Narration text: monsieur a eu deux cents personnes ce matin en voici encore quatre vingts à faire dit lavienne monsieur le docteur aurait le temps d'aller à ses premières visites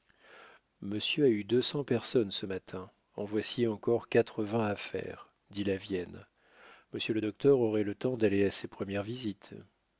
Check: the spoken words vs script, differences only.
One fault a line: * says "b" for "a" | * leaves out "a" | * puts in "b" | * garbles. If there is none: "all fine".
all fine